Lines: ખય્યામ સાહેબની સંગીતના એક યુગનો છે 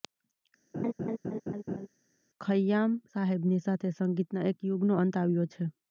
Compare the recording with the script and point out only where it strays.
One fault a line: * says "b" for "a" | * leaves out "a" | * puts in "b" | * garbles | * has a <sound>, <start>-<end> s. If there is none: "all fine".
* has a laugh, 0.7-1.9 s
* puts in "સાથે"
* puts in "અંત આવ્યો"